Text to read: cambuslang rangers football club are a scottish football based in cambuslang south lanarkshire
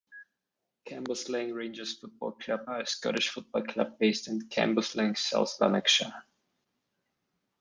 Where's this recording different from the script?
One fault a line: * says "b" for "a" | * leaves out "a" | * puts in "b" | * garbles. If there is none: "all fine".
* puts in "club"